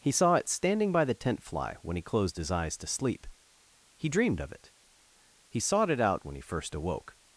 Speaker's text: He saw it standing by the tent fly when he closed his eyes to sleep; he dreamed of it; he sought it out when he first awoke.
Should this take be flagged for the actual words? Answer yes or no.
no